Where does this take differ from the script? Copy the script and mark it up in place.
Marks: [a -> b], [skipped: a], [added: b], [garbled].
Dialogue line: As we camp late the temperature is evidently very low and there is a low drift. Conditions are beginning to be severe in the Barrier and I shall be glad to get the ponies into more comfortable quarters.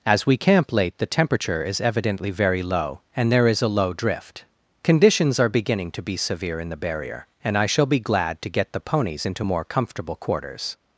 As we camp late the temperature is evidently very low and there is a low drift. Conditions are beginning to be severe in the Barrier and I shall be glad to get the ponies into more comfortable quarters.